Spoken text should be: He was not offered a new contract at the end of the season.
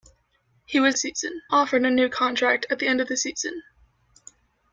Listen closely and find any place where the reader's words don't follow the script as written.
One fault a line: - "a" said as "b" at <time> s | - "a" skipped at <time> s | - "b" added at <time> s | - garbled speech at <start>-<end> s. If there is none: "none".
- "not" said as "season" at 1.0 s